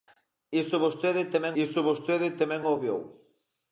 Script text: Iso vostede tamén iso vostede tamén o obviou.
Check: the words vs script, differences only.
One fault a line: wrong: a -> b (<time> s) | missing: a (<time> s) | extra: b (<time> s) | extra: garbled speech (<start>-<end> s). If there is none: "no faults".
no faults